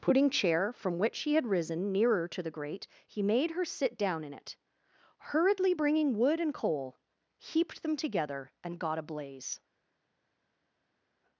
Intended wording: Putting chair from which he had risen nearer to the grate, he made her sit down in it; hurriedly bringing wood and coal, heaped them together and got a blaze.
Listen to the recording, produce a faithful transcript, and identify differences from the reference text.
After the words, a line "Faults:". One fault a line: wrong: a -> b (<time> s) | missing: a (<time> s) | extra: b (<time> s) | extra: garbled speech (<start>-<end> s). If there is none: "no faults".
Putting chair from which he had risen nearer to the grate, he made her sit down in it; hurriedly bringing wood and coal, heaped them together and got a blaze.
Faults:
no faults